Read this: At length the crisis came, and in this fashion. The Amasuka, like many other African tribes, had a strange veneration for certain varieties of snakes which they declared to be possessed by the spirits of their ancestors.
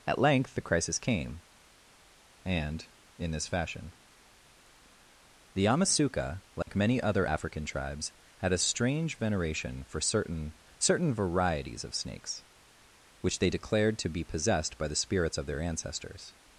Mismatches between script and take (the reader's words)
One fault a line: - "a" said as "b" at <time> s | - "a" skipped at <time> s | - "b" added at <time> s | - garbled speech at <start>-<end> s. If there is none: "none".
- "certain" added at 10.8 s